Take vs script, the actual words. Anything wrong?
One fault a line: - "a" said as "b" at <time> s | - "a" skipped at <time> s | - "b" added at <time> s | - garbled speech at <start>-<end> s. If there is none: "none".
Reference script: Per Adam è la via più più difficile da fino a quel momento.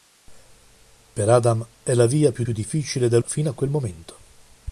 none